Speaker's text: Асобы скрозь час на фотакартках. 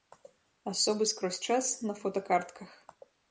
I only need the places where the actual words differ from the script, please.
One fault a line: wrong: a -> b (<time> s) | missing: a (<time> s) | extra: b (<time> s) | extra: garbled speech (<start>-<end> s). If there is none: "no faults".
no faults